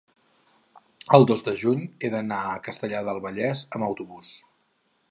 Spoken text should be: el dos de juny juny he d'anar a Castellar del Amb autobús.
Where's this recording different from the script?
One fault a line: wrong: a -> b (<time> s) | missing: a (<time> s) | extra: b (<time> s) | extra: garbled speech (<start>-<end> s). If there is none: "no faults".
missing: juny (1.9 s)
extra: Vallès (3.3 s)